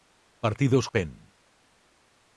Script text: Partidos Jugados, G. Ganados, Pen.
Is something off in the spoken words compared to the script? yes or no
yes